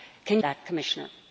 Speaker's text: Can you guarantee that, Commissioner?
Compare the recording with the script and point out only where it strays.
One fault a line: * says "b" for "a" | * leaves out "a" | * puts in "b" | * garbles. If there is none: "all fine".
* leaves out "you guarantee"